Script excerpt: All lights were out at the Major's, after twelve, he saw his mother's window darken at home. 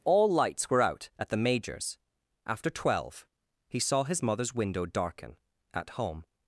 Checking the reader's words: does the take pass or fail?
pass